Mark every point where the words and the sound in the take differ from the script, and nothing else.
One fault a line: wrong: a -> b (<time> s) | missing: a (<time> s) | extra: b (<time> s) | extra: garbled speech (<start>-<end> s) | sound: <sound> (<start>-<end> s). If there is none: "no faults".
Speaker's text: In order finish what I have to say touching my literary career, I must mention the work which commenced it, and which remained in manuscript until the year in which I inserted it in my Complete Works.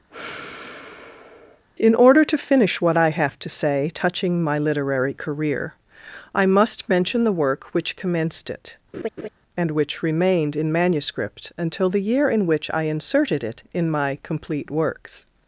sound: sigh (0.1-1.6 s)
extra: to (2.2 s)
sound: laugh (8.9-9.3 s)